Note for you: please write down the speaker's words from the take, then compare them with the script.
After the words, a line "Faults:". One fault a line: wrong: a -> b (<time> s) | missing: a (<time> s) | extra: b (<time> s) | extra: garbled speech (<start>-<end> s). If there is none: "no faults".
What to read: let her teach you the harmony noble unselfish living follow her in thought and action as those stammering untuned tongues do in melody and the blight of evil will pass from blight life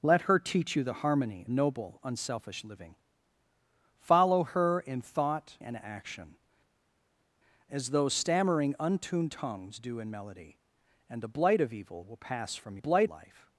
let her teach you the harmony noble unselfish living follow her in thought and action as those stammering untuned tongues do in melody and the blight of evil will pass from blight life
Faults:
no faults